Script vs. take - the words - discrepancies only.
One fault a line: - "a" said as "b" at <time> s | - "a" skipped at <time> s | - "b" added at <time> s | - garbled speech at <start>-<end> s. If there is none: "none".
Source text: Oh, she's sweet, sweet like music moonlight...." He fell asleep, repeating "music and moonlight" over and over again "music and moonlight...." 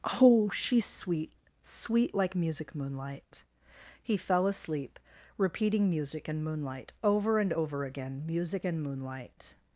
none